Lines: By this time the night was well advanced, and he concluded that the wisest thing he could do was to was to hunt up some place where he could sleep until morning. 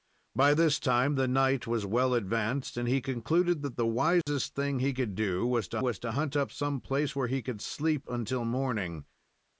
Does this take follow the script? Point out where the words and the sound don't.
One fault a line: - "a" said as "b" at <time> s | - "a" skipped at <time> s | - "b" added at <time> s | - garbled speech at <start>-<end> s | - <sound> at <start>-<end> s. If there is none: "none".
- dropout at 4.2-4.3 s